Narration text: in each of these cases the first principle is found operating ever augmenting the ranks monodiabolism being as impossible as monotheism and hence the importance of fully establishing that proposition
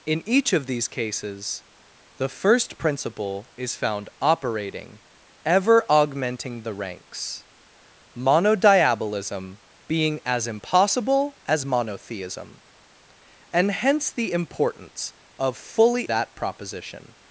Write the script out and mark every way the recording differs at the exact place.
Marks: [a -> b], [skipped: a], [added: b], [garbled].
in each of these cases the first principle is found operating ever augmenting the ranks monodiabolism being as impossible as monotheism and hence the importance of fully [skipped: establishing] that proposition